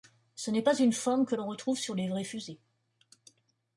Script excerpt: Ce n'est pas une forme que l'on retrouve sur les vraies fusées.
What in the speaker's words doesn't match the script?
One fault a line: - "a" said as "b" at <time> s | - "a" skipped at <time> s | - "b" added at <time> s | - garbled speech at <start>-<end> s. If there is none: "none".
none